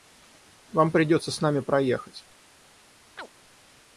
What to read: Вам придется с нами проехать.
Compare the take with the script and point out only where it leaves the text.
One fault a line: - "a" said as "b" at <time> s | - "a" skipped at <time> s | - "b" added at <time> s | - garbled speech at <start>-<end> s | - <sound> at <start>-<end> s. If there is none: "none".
- chirp at 3.2-3.3 s